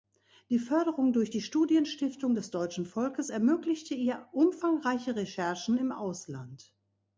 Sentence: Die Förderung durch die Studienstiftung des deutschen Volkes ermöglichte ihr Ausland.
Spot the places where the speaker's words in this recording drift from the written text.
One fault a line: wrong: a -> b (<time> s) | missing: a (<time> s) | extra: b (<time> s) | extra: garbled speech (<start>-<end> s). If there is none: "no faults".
extra: umfangreiche Recherchen im (4.3 s)